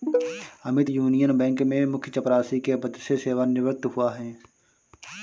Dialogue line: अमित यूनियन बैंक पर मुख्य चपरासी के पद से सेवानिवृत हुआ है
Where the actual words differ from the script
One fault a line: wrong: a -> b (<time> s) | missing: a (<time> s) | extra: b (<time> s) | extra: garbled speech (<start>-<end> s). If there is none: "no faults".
wrong: पर -> में (1.6 s)